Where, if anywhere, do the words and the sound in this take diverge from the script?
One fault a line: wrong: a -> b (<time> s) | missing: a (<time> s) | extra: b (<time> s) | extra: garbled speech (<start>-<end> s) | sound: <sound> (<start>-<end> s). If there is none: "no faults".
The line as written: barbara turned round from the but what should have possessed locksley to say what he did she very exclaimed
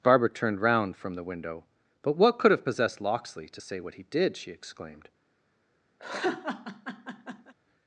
extra: window (1.2 s)
wrong: should -> could (2.4 s)
missing: very (4.5 s)
sound: laugh (6.0-7.5 s)